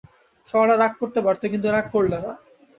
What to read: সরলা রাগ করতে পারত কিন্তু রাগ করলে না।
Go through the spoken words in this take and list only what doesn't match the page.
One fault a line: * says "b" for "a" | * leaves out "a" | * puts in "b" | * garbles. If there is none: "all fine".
all fine